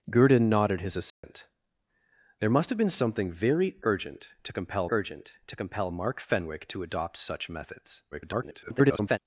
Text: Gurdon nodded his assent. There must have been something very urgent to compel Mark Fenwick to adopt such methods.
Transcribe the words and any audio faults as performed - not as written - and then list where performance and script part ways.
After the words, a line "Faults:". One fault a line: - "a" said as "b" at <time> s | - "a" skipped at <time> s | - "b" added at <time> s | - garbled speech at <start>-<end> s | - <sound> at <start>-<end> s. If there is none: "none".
Gurdon nodded his assent. There must have been something very urgent to compel urgent to compel Mark Fenwick to adopt such methods. [garbled]
Faults:
- dropout at 1.1-1.2 s
- "urgent to compel" added at 4.9 s
- garbled speech at 8.1-9.2 s